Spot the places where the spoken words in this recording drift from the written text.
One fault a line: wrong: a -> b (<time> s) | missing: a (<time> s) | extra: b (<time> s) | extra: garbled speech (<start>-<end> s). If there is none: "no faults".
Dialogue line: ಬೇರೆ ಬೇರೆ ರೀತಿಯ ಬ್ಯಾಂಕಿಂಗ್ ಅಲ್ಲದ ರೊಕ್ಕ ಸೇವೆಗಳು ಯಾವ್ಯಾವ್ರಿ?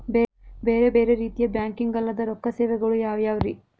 no faults